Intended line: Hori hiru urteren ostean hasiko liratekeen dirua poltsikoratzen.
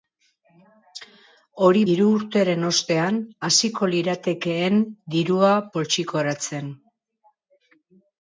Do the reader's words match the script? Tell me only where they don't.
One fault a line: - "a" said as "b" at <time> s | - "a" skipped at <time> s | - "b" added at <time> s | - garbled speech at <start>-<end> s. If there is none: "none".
none